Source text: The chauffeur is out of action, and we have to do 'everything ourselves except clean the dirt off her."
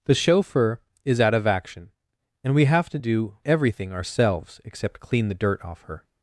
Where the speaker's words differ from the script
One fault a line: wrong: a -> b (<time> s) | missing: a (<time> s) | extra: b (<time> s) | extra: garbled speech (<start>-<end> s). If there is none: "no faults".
no faults